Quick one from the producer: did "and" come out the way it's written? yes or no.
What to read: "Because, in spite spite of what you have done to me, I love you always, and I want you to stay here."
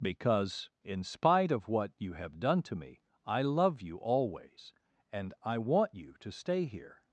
yes